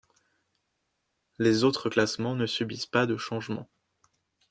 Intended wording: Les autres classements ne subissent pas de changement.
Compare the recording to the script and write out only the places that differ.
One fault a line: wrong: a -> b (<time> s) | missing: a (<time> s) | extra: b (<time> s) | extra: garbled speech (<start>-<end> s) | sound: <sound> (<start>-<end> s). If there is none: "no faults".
no faults